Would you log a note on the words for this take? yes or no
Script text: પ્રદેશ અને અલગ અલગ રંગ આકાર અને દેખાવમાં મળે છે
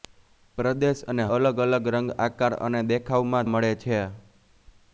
no